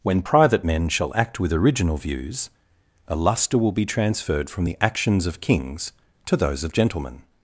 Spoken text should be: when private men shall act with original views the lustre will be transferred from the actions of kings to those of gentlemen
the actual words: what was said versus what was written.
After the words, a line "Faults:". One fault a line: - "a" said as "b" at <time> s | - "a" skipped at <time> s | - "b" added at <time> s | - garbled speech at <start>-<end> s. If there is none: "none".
when private men shall act with original views a lustre will be transferred from the actions of kings to those of gentlemen
Faults:
- "the" said as "a" at 3.1 s